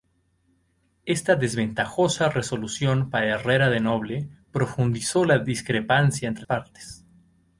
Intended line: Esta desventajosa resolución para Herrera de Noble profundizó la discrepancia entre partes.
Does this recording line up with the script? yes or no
yes